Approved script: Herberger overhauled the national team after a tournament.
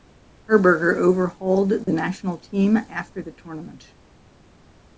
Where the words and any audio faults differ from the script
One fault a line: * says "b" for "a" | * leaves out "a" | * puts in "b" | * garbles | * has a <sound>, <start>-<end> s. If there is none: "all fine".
* has a dropout, 1.8-1.9 s
* says "the" for "a"